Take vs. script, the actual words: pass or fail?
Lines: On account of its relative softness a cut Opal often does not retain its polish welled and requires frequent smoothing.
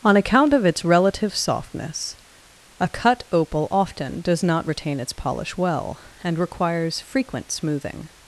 fail